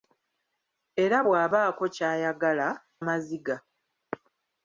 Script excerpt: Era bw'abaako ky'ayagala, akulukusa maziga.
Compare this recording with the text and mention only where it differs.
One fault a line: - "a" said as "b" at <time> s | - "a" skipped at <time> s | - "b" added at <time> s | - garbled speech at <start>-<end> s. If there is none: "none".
- "akulukusa" skipped at 2.7 s